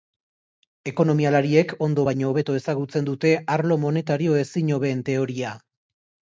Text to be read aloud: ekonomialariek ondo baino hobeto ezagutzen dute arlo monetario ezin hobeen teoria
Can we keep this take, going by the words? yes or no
yes